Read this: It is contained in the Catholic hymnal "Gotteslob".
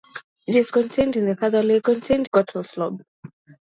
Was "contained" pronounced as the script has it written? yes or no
yes